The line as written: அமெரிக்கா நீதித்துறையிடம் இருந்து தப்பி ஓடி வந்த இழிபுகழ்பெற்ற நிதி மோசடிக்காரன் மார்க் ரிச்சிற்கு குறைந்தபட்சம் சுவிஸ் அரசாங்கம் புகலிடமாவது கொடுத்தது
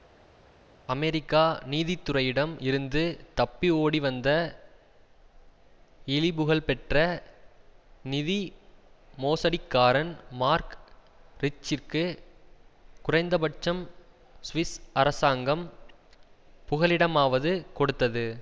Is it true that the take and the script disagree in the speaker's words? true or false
false